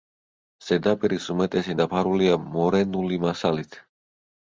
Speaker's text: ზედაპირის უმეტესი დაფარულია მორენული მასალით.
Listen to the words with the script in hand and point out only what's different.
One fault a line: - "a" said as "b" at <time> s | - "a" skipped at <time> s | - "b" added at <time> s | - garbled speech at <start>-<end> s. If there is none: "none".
none